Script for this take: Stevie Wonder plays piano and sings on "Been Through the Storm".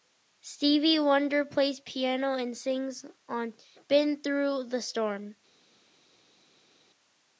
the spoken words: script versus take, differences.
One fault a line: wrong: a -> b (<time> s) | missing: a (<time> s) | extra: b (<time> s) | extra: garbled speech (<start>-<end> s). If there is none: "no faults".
no faults